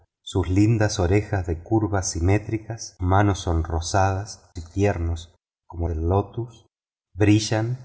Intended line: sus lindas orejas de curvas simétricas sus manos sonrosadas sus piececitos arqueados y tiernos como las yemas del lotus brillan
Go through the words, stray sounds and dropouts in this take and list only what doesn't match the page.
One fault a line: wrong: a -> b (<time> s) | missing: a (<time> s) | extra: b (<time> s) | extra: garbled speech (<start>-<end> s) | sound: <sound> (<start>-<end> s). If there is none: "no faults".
missing: sus (3.0 s)
missing: sus piececitos arqueados (4.4 s)
missing: las yemas (5.9 s)